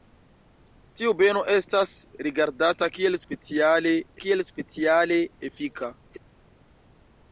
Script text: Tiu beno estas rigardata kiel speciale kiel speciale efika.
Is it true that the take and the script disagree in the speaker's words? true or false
false